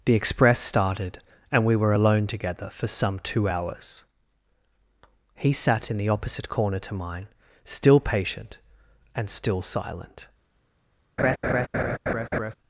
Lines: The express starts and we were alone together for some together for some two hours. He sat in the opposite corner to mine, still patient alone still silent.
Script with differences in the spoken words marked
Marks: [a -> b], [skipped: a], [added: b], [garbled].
The express [starts -> started] and we were alone together for some [skipped: together for some] two hours. He sat in the opposite corner to mine, still patient [alone -> and] still silent.